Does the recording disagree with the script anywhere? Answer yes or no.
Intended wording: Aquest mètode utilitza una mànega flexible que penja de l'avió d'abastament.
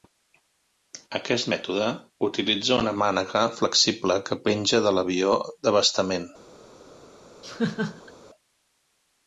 no